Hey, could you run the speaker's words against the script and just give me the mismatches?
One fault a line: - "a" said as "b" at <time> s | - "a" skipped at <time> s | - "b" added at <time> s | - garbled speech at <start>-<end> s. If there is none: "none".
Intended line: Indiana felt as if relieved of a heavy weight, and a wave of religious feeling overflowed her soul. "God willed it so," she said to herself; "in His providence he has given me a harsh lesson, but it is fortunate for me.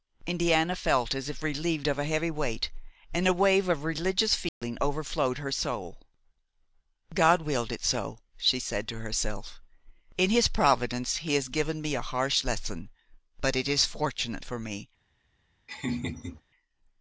none